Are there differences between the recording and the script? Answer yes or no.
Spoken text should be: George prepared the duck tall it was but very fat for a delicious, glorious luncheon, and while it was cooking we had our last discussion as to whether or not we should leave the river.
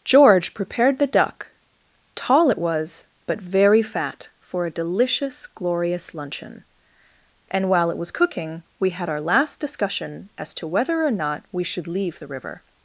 no